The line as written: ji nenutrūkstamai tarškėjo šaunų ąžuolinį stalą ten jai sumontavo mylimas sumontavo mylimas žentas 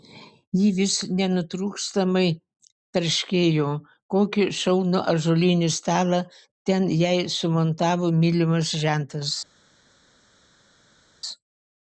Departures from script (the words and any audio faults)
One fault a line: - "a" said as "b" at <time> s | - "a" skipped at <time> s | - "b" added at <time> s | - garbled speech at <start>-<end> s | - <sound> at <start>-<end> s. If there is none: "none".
- "vis" added at 0.8 s
- "kokį" added at 4.2 s
- "sumontavo mylimas" skipped at 8.8 s